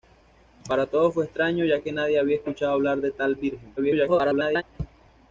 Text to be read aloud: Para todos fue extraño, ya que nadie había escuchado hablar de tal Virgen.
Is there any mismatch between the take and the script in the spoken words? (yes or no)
yes